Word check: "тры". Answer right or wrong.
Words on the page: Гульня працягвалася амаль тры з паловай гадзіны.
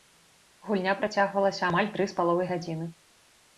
right